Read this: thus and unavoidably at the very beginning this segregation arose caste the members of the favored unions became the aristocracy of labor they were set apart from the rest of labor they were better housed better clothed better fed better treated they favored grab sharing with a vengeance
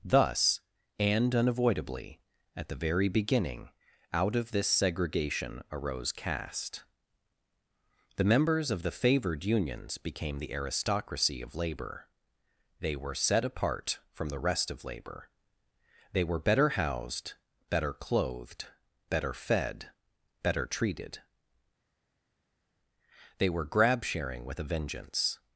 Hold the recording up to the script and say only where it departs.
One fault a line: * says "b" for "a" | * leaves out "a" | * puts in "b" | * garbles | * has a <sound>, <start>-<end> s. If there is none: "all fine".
* puts in "out of"
* says "were" for "favored"